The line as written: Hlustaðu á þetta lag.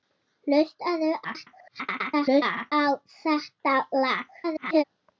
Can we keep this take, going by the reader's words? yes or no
no